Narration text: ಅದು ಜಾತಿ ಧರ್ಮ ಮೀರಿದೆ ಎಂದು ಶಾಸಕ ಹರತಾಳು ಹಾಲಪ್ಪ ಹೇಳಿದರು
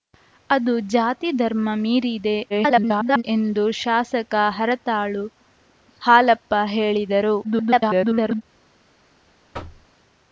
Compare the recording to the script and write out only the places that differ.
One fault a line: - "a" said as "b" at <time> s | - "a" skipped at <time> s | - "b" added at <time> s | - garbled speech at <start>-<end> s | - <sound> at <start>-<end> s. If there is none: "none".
- garbled speech at 2.5-3.2 s
- garbled speech at 7.4-8.4 s
- thud at 9.5-9.9 s